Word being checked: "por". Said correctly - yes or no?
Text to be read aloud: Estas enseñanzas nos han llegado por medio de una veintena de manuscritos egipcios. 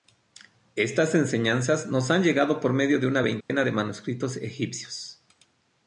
yes